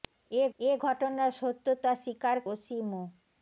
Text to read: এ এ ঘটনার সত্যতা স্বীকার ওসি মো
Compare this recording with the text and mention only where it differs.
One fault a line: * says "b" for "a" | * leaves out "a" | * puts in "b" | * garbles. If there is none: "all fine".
all fine